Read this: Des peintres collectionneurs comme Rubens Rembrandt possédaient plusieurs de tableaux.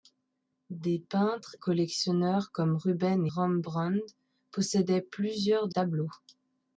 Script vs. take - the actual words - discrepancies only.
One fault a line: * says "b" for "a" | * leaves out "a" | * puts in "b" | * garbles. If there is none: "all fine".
all fine